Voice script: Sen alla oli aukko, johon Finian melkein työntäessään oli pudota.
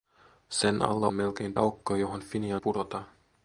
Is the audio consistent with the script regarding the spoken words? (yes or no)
no